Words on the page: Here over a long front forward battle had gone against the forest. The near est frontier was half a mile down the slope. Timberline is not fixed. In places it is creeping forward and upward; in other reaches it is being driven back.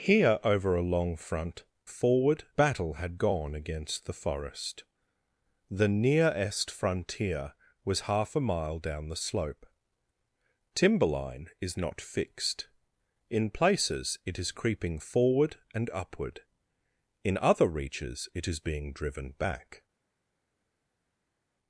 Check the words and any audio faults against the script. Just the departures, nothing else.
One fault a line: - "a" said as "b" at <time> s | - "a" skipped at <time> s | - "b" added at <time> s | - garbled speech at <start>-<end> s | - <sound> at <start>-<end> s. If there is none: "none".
none